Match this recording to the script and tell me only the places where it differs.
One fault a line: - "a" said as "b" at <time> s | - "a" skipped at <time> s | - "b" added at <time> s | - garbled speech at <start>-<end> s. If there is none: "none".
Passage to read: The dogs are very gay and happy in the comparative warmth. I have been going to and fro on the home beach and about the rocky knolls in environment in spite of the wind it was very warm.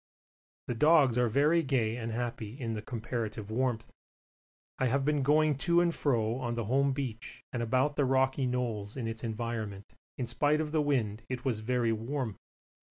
- "its" added at 9.1 s